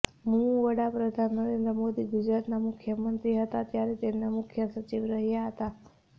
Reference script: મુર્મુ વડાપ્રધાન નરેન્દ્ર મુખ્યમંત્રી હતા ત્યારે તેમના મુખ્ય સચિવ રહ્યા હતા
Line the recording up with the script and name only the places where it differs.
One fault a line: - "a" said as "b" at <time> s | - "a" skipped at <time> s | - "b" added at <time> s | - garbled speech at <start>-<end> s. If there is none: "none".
- "મોદી ગુજરાતના" added at 1.8 s